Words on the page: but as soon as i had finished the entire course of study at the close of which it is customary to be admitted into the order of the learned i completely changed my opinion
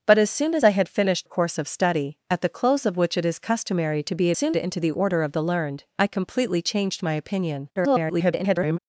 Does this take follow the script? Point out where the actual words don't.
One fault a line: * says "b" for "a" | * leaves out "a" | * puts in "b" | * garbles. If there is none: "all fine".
* leaves out "the entire"
* says "soon" for "admitted"
* garbles